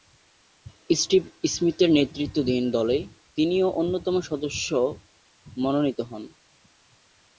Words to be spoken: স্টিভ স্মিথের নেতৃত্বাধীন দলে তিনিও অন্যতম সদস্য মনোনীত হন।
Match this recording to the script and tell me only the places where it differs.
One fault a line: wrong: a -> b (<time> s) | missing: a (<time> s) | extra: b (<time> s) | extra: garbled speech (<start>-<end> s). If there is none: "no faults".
no faults